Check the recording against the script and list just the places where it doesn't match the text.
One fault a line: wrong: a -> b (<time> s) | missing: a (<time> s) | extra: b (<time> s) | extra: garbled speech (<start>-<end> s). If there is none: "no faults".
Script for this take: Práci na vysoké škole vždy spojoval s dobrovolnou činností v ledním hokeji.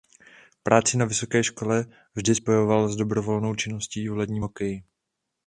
no faults